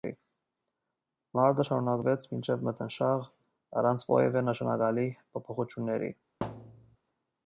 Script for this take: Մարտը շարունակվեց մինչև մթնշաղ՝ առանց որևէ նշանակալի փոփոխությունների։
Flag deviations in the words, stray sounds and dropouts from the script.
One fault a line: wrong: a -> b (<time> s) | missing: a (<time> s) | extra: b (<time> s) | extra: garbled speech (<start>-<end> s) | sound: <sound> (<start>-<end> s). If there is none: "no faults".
sound: thud (6.4-7.0 s)